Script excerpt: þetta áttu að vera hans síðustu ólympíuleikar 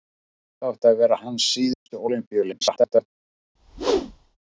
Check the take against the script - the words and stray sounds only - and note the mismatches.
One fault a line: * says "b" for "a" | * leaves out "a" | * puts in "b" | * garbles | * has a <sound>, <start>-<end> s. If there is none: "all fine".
* has a dropout, 1.7-1.9 s
* garbles
* has a whoosh, 3.6-4.4 s